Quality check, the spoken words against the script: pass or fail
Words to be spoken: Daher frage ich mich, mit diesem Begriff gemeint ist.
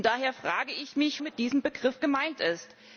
pass